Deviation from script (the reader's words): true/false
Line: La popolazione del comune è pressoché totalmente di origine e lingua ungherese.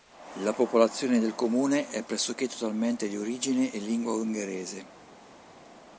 false